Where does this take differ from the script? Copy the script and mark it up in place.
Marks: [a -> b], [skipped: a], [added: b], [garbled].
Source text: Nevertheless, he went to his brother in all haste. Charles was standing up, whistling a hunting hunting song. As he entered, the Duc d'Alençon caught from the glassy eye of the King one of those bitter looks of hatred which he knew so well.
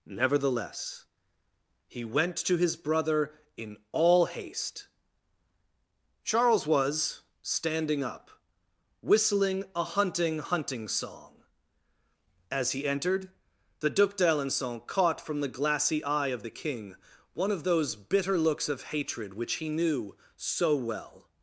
Nevertheless, he went to his brother in all haste. Charles was standing up, whistling a hunting hunting song. As he entered, the Duc d'Alençon caught from the glassy eye of the King one of those bitter looks of hatred which he knew so well.